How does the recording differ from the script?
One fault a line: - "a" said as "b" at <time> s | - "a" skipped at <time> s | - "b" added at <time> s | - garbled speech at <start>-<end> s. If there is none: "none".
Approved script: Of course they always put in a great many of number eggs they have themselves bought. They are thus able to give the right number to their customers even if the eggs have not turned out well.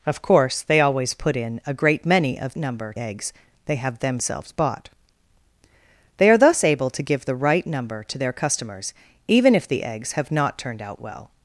none